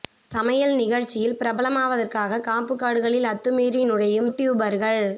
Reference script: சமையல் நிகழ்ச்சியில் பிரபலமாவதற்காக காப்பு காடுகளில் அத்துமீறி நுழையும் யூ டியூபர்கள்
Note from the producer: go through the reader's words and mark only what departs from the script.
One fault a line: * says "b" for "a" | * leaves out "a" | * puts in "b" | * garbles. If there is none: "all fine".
* leaves out "யூ"